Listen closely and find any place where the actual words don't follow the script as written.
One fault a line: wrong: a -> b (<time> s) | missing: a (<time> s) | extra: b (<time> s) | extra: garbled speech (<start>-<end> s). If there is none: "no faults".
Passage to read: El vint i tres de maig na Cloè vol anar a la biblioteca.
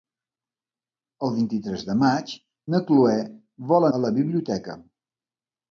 missing: anar (3.9 s)